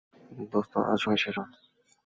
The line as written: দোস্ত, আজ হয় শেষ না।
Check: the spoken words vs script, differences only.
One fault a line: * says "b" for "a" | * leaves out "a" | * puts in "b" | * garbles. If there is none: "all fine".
all fine